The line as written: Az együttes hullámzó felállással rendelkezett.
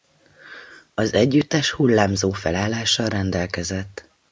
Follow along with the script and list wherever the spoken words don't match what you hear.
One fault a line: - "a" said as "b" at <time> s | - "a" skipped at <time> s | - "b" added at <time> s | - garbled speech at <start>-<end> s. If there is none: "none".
none